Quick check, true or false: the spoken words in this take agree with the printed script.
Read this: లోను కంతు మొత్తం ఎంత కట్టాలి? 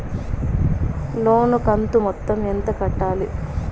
true